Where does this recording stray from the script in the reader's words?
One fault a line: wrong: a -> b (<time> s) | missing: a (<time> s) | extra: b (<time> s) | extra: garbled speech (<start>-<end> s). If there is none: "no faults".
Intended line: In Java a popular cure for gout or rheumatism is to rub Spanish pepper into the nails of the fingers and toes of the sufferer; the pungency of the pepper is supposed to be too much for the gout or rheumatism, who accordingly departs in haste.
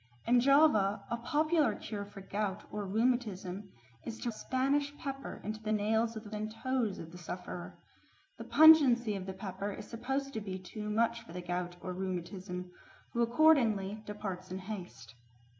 missing: rub (4.3 s)
missing: fingers (6.3 s)